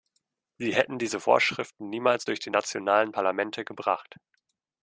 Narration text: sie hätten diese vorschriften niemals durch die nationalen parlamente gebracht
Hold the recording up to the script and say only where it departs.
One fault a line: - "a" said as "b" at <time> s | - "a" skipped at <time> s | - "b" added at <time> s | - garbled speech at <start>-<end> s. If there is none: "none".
none